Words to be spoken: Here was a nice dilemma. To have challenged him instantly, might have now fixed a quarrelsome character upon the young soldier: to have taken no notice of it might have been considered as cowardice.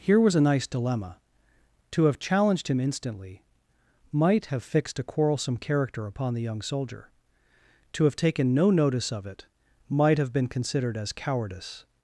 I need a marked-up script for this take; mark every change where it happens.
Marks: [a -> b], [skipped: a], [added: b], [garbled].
Here was a nice dilemma. To have challenged him instantly, might have [skipped: now] fixed a quarrelsome character upon the young soldier: to have taken no notice of it might have been considered as cowardice.